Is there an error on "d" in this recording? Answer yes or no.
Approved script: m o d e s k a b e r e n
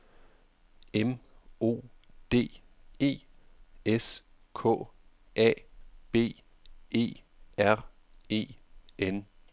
no